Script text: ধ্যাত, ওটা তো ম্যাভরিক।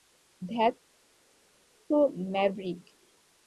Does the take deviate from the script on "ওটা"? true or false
true